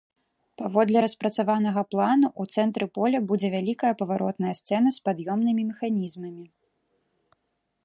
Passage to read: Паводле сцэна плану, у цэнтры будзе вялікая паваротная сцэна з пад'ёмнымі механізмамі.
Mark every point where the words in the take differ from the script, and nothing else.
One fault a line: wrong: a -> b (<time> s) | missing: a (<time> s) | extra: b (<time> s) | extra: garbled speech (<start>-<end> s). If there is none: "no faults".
wrong: сцэна -> распрацаванага (1.0 s)
extra: поля (3.0 s)